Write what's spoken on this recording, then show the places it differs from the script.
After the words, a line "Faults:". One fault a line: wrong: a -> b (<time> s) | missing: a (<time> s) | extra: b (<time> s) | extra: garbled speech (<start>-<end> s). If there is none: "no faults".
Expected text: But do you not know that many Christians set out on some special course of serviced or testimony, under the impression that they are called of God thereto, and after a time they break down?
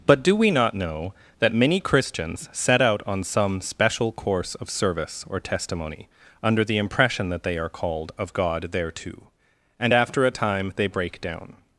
But do we not know that many Christians set out on some special course of service or testimony, under the impression that they are called of God thereto, and after a time they break down?
Faults:
wrong: you -> we (0.3 s)
wrong: serviced -> service (4.7 s)